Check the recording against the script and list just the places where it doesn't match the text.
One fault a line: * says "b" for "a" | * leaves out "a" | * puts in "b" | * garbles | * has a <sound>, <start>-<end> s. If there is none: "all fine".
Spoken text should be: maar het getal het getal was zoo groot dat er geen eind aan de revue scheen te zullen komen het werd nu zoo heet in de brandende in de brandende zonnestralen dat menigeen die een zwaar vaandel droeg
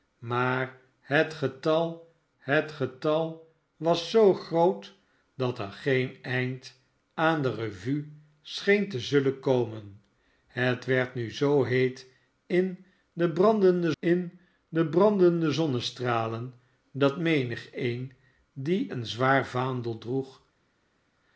all fine